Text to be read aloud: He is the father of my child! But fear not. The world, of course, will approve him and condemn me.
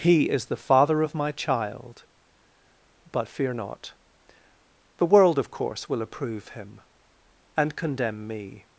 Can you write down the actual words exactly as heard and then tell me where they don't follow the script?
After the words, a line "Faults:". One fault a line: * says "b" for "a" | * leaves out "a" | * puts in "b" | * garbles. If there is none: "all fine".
He is the father of my child! But fear not. The world, of course, will approve him and condemn me.
Faults:
all fine